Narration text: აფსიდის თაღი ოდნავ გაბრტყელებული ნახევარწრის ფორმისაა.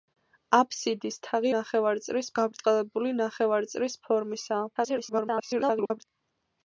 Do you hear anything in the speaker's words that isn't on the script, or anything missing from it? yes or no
yes